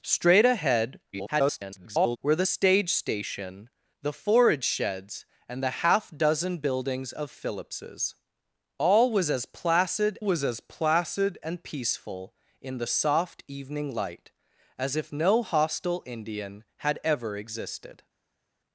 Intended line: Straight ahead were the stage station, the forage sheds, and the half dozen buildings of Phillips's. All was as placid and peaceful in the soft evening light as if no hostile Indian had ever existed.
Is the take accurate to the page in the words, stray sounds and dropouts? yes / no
no